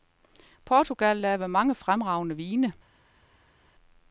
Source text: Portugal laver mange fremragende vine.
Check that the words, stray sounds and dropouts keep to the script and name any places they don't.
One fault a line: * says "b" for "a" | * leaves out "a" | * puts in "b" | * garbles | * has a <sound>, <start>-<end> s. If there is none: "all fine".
all fine